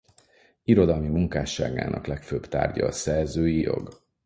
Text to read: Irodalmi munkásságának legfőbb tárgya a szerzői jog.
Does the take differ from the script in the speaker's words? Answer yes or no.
no